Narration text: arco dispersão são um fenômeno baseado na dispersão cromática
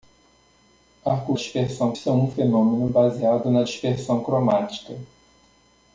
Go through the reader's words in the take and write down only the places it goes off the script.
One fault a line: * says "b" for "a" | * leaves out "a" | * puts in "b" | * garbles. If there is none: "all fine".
all fine